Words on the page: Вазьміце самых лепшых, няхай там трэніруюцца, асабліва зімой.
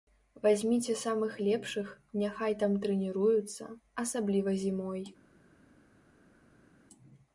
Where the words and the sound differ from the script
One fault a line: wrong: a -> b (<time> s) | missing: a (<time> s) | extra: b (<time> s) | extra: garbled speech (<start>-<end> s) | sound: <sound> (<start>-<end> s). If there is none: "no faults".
no faults